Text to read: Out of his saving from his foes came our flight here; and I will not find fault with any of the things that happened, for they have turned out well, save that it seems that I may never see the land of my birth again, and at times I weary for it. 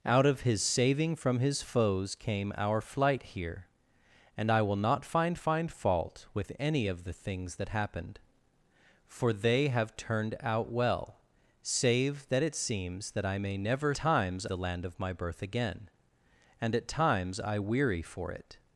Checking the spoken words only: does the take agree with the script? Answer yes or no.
no